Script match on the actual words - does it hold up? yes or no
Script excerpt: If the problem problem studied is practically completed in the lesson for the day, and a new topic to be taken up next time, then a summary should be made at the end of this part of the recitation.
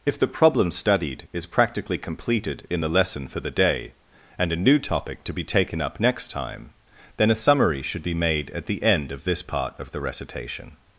no